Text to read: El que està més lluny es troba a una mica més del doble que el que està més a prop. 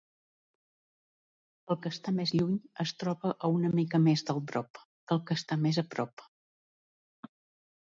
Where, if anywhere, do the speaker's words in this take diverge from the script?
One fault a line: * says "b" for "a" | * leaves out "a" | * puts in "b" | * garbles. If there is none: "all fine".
* says "prop" for "doble"